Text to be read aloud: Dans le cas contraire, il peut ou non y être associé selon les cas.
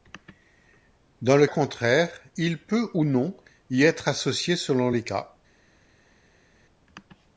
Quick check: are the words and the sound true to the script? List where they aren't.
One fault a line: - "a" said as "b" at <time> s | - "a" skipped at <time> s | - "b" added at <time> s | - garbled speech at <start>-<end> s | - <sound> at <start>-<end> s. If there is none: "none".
- "cas" skipped at 1.4 s